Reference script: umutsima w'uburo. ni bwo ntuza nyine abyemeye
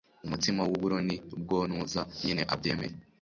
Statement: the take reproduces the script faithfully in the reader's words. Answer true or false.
true